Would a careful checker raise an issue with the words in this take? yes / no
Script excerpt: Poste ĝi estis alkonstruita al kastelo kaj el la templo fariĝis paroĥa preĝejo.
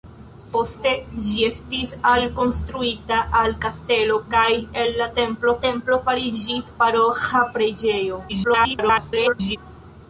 yes